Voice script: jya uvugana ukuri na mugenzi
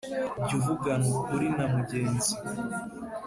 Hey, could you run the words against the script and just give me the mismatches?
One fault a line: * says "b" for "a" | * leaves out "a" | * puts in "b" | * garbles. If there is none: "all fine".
all fine